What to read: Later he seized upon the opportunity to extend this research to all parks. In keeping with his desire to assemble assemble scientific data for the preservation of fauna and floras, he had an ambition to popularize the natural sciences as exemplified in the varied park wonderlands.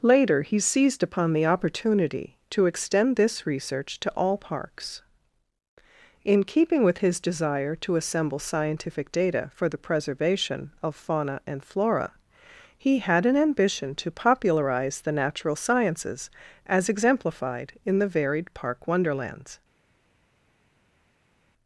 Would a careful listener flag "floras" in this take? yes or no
yes